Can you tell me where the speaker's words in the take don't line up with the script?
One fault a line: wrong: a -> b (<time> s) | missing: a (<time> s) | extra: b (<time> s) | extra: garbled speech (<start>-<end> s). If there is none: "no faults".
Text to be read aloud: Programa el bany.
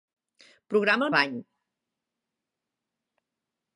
no faults